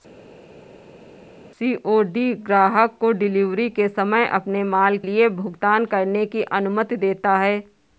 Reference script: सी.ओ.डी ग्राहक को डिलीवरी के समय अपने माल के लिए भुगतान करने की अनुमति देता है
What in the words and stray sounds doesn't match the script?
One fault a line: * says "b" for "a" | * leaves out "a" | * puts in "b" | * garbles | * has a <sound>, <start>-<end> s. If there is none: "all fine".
* leaves out "के"